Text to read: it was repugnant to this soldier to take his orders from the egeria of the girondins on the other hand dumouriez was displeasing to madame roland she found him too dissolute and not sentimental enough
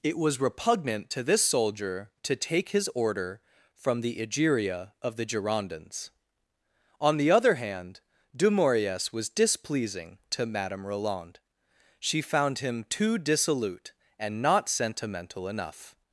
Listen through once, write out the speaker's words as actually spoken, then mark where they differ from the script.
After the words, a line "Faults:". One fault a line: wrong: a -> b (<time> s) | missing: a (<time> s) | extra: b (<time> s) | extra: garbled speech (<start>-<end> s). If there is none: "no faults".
it was repugnant to this soldier to take his order from the egeria of the girondins on the other hand dumouriez was displeasing to madame roland she found him too dissolute and not sentimental enough
Faults:
wrong: orders -> order (2.9 s)